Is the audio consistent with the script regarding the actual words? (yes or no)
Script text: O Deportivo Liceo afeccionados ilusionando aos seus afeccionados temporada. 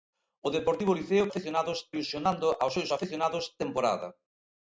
yes